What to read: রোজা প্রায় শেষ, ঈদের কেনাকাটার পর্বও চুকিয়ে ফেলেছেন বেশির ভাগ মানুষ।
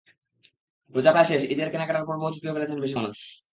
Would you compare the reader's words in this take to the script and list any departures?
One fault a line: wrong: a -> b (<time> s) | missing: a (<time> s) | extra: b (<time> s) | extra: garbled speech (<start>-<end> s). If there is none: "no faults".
missing: ভাগ (3.0 s)